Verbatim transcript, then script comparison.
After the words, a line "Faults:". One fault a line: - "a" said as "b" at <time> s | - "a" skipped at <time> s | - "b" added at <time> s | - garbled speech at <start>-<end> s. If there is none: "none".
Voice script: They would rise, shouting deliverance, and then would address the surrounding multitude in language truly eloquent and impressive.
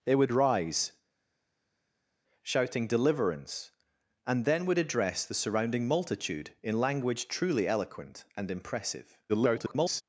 They would rise, shouting deliverance, and then would address the surrounding multitude in language truly eloquent and impressive. [garbled]
Faults:
- garbled speech at 9.3-10.0 s